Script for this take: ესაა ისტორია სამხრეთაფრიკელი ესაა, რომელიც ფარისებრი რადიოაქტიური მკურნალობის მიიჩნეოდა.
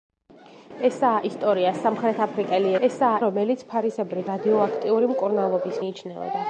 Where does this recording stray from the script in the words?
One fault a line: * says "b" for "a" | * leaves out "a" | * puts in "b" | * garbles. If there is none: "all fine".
all fine